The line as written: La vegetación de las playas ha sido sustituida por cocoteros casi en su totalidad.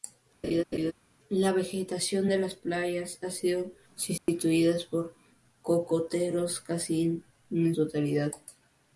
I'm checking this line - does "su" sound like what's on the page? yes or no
no